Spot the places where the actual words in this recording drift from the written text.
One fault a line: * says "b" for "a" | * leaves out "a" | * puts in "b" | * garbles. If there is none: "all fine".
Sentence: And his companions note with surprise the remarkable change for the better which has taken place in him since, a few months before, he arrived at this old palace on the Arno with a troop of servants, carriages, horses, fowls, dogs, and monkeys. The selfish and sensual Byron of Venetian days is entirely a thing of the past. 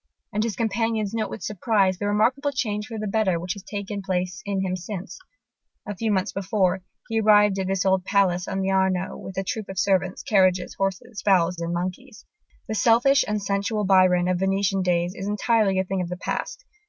* leaves out "dogs"